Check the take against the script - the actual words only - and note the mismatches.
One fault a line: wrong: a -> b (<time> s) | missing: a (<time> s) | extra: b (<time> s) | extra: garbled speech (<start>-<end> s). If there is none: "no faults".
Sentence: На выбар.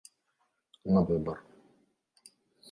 no faults